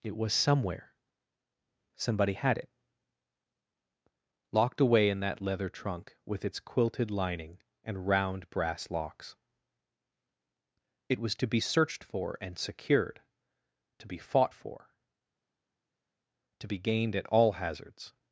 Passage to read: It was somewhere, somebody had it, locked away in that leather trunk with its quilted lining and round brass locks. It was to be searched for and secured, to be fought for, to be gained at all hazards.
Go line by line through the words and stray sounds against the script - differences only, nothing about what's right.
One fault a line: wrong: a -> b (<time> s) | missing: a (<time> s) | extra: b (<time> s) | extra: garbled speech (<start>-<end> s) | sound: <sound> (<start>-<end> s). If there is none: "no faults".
no faults